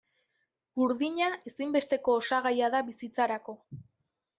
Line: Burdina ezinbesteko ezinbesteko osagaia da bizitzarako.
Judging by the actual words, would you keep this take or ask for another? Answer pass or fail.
fail